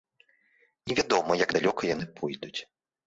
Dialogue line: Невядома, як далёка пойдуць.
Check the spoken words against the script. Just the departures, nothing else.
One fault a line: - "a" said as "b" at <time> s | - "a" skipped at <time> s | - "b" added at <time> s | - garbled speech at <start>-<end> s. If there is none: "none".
- "яны" added at 1.9 s